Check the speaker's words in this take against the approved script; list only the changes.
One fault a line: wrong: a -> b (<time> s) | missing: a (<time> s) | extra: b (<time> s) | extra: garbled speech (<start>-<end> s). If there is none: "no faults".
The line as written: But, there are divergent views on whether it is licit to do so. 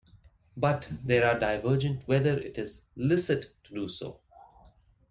missing: views on (2.0 s)